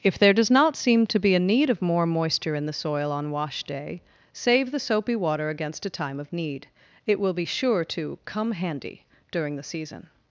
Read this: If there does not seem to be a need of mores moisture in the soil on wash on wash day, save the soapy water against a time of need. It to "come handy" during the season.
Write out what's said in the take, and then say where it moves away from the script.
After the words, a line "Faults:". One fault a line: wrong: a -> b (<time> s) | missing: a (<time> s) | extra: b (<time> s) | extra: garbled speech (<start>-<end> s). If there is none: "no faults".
If there does not seem to be a need of more moisture in the soil on wash day, save the soapy water against a time of need. It will be sure to "come handy" during the season.
Faults:
wrong: mores -> more (1.8 s)
missing: on wash (3.6 s)
extra: will be sure (7.2 s)